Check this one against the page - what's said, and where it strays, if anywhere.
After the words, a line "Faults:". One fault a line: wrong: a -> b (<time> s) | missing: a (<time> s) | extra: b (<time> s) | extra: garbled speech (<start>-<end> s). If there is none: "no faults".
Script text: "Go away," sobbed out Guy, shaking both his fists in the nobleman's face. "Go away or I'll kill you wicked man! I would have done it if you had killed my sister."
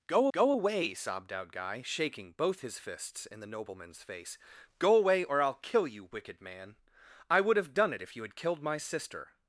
"Go go away," sobbed out Guy, shaking both his fists in the nobleman's face. "Go away or I'll kill you wicked man! I would have done it if you had killed my sister."
Faults:
extra: go (0.3 s)